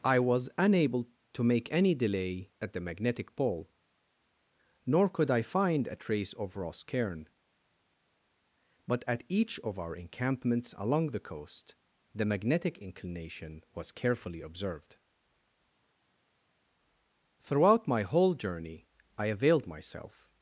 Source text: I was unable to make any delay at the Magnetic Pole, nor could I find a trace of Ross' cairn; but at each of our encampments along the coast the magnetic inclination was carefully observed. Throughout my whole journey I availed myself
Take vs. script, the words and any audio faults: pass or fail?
pass